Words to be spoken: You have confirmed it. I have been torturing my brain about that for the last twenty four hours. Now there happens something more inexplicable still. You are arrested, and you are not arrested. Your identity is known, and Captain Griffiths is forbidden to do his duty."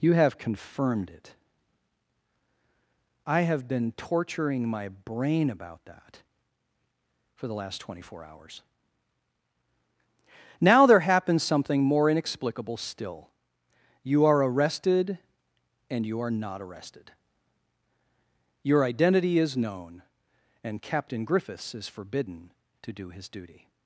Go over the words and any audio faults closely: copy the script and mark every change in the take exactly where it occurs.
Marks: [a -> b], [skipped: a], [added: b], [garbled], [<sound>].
You have confirmed it. I have been torturing my brain about that for the last twenty four hours. Now there happens something more inexplicable still. You are arrested, and you are not arrested. Your identity is known, and Captain Griffiths is forbidden to do his duty."